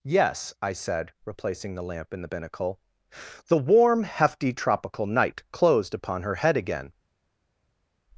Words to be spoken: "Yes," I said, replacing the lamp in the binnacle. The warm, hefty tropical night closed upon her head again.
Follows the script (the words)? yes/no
yes